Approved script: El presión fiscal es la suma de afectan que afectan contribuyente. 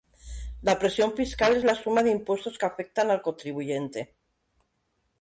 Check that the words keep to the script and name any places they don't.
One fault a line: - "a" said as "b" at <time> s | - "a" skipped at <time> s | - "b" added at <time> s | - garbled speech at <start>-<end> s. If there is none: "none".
- "El" said as "La" at 0.6 s
- "afectan" said as "impuestos" at 2.1 s
- "al" added at 3.1 s